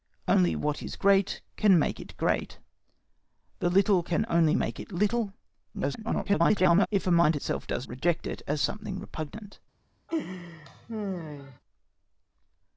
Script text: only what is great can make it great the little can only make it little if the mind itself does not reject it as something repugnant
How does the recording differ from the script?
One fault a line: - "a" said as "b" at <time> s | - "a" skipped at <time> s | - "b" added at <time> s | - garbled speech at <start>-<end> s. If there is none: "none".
- garbled speech at 5.7-6.9 s
- "not" skipped at 7.9 s